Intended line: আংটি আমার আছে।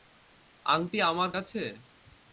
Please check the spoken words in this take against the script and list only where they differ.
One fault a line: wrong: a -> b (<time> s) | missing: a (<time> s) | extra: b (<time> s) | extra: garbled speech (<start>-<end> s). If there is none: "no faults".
no faults